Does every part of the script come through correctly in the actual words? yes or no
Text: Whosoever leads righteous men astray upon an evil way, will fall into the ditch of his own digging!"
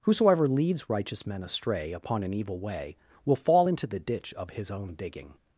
yes